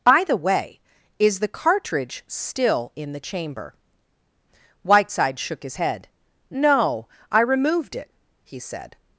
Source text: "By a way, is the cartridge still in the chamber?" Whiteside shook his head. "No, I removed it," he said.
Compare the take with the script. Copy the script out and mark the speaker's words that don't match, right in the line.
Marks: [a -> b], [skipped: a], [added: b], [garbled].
"By [a -> the] way, is the cartridge still in the chamber?" Whiteside shook his head. "No, I removed it," he said.